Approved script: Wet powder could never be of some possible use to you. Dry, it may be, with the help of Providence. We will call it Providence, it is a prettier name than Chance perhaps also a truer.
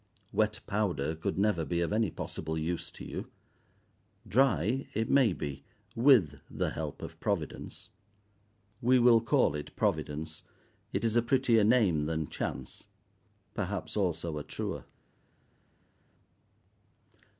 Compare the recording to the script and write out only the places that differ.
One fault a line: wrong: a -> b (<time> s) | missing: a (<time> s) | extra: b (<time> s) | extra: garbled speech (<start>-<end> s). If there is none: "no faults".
wrong: some -> any (1.9 s)